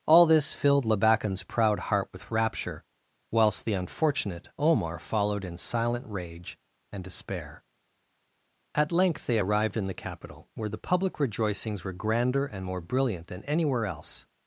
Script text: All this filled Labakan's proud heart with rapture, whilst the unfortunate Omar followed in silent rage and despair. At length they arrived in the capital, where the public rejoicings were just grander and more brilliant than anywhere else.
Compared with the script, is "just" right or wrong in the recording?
wrong